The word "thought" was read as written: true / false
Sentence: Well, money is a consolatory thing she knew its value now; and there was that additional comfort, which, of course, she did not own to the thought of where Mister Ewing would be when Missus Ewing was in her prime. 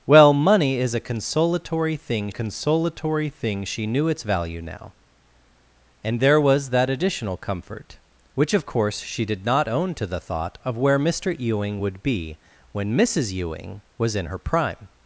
true